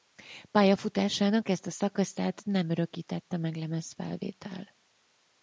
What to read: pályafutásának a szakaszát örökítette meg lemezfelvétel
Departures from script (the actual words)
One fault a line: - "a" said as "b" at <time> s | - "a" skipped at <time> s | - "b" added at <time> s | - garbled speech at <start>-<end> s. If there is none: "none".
- "ezt" added at 1.5 s
- "nem" added at 2.5 s